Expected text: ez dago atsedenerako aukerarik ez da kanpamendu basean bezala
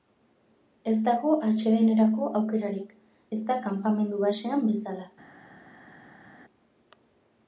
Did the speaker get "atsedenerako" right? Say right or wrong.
right